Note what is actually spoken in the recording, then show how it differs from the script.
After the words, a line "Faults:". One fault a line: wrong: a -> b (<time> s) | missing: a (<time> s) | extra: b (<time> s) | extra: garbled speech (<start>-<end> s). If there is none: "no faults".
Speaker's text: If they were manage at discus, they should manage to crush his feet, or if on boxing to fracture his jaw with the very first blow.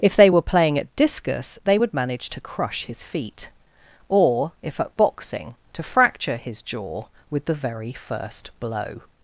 If they were playing at discus, they would manage to crush his feet, or if at boxing to fracture his jaw with the very first blow.
Faults:
wrong: manage -> playing (0.4 s)
wrong: should -> would (1.8 s)
wrong: on -> at (4.8 s)